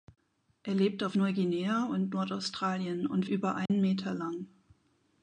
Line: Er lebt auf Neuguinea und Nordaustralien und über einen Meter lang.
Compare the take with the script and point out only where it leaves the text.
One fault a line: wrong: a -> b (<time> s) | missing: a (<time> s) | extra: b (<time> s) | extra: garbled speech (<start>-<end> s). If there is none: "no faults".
no faults